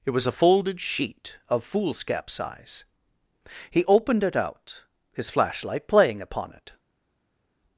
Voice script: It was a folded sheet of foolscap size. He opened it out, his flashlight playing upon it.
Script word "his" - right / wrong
right